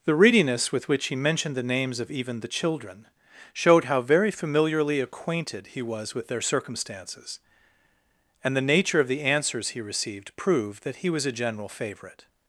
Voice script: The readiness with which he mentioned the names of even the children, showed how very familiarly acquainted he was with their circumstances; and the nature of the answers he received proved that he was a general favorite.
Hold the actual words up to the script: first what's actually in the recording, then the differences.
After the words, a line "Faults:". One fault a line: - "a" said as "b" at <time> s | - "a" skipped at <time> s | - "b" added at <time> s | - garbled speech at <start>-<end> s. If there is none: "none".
The readiness with which he mentioned the names of even the children, showed how very familiarly acquainted he was with their circumstances; and the nature of the answers he received proved that he was a general favorite.
Faults:
none